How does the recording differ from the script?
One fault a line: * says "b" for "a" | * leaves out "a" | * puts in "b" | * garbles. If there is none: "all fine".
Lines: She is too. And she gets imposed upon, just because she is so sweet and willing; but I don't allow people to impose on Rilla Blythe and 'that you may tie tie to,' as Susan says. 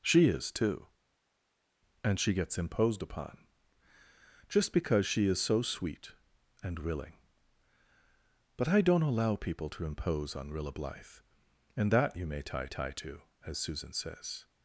all fine